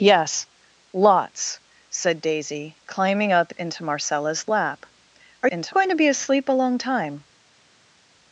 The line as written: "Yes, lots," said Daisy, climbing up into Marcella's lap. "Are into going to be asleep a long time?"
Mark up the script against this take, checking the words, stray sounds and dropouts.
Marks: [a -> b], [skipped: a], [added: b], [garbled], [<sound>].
"Yes, lots," said Daisy, climbing up into Marcella's lap. "Are into going to be asleep a long time?"